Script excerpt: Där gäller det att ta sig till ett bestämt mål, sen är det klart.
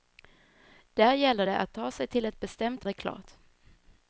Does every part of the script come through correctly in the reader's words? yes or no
no